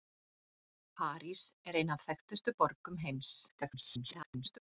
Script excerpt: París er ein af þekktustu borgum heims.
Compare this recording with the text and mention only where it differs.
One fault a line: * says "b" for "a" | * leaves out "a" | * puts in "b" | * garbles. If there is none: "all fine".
* garbles